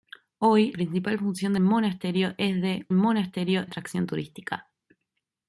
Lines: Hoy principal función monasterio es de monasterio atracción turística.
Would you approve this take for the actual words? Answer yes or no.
yes